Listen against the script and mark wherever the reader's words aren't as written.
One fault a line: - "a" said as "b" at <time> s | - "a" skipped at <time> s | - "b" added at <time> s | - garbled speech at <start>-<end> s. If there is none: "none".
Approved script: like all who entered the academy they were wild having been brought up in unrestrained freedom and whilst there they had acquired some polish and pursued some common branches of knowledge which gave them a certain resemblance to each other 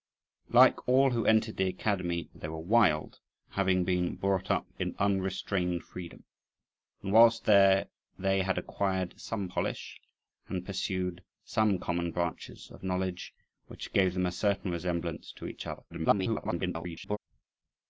- garbled speech at 15.9-17.2 s